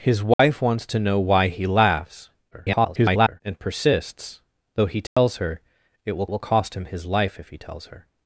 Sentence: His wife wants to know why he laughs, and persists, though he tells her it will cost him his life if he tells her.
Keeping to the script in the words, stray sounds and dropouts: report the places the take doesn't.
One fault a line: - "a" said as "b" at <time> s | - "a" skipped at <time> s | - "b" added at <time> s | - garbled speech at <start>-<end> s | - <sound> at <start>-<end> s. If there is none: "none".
- dropout at 0.3-0.4 s
- garbled speech at 2.5-3.4 s
- dropout at 5.1-5.2 s
- "will" added at 6.3 s